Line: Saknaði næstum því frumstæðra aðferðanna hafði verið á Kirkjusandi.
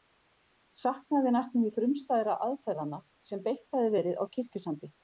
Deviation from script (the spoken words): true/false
true